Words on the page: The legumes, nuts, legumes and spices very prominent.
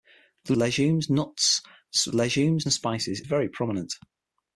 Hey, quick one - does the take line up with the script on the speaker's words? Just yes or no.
yes